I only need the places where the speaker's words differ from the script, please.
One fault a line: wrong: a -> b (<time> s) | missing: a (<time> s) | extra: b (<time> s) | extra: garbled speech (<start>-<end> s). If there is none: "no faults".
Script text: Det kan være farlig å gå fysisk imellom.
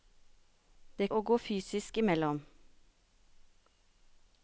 missing: kan være farlig (1.1 s)